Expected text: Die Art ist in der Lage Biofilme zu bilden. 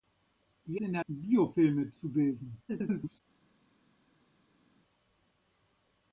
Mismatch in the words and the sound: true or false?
true